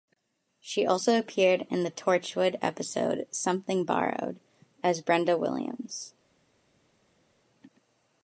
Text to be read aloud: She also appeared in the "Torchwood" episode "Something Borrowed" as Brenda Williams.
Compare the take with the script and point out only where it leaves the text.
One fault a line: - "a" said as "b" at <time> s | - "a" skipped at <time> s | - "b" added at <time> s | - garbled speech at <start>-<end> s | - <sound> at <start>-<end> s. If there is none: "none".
none